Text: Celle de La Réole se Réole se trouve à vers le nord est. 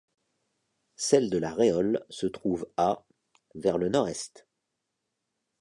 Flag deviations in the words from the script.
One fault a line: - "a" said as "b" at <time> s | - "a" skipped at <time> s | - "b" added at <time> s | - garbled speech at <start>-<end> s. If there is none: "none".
- "Réole se" skipped at 2.2 s